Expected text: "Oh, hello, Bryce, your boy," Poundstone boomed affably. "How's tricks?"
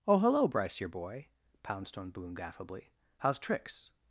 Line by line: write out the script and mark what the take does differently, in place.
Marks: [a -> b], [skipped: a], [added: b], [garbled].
"Oh, hello, Bryce, your boy," Poundstone boomed affably. "How's tricks?"